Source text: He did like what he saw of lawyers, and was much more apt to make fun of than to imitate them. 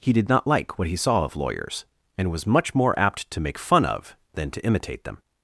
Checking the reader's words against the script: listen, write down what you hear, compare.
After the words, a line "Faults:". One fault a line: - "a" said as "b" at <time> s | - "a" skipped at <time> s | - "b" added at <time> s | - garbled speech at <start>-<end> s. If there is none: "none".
He did not like what he saw of lawyers, and was much more apt to make fun of than to imitate them.
Faults:
- "not" added at 0.3 s